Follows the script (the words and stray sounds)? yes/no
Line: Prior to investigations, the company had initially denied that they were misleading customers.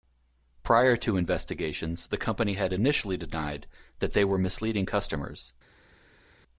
yes